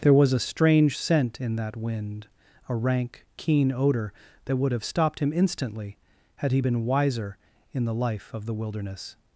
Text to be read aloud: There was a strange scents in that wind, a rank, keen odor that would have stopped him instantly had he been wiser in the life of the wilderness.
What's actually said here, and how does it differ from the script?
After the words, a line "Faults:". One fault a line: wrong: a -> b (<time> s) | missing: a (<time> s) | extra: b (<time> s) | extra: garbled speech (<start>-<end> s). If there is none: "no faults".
There was a strange scent in that wind, a rank, keen odor that would have stopped him instantly had he been wiser in the life of the wilderness.
Faults:
wrong: scents -> scent (0.9 s)